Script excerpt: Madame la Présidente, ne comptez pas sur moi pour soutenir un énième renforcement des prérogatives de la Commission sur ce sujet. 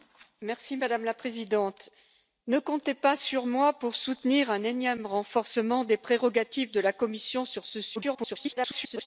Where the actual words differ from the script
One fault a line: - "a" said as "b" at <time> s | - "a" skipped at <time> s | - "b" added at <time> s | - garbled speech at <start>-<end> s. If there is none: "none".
- garbled speech at 8.0-9.1 s